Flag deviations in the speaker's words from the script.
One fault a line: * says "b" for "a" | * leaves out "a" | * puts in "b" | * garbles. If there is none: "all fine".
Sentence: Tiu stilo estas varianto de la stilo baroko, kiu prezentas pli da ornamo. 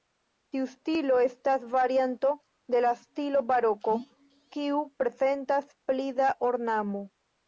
all fine